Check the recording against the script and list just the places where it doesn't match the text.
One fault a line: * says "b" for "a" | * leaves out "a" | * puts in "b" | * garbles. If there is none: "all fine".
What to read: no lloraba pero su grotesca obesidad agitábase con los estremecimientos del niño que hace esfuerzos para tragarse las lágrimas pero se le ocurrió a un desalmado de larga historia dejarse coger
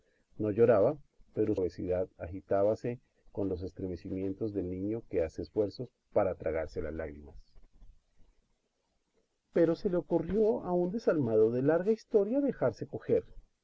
* leaves out "su grotesca"